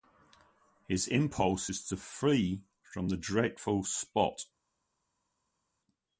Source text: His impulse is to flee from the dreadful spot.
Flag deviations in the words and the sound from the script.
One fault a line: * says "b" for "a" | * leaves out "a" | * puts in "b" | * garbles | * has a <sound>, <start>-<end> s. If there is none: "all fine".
all fine